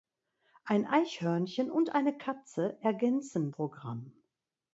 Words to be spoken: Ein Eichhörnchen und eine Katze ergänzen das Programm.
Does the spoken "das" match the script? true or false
false